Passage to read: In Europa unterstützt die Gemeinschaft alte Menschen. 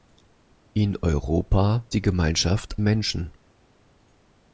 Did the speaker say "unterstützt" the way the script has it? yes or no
no